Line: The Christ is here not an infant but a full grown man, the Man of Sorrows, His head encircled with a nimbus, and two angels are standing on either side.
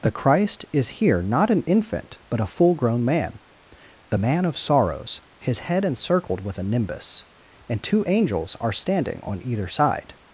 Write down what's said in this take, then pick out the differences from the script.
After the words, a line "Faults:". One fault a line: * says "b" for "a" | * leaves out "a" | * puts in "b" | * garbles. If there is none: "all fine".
The Christ is here not an infant but a full grown man, the Man of Sorrows, His head encircled with a nimbus, and two angels are standing on either side.
Faults:
all fine